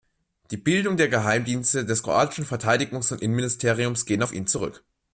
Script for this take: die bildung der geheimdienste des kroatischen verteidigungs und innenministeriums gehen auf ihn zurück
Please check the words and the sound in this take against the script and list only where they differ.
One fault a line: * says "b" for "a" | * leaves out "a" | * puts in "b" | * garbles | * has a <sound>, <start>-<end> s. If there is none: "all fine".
all fine